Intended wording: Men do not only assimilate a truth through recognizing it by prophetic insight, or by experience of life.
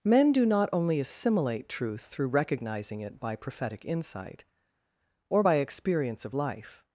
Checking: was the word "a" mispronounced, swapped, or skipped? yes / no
yes